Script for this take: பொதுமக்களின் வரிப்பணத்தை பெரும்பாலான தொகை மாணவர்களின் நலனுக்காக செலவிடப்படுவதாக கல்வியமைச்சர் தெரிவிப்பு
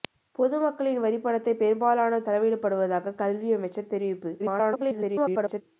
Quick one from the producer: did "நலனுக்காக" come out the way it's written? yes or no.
no